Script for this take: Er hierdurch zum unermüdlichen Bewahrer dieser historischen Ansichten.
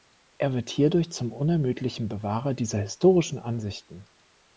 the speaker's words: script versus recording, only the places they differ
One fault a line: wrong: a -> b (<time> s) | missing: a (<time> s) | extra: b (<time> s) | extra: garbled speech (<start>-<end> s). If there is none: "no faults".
extra: wird (0.6 s)